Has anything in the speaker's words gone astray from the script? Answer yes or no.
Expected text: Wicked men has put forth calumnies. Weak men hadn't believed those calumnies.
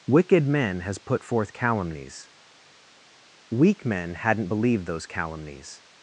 no